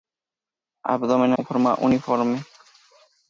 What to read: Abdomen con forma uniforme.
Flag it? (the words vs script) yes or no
no